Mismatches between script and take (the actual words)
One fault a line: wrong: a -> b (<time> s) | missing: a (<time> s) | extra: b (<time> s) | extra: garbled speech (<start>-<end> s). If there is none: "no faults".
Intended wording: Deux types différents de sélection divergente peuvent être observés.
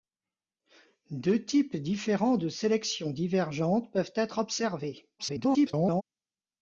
extra: garbled speech (5.2-6.0 s)